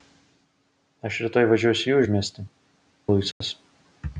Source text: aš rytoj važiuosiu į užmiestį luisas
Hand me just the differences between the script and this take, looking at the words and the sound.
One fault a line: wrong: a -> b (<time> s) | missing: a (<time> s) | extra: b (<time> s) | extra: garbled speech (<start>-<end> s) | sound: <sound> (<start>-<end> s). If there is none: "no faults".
sound: dropout (3.3-3.4 s)